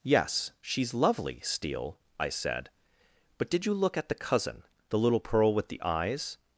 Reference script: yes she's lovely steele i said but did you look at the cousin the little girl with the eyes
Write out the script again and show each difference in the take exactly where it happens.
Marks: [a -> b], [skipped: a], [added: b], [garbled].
yes she's lovely steele i said but did you look at the cousin the little [girl -> pearl] with the eyes